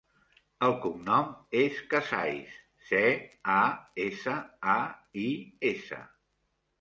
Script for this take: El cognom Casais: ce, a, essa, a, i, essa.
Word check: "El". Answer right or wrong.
right